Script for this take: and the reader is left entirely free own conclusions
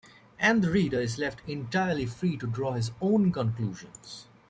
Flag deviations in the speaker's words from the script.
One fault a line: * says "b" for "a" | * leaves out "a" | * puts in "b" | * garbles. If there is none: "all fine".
* puts in "to draw his"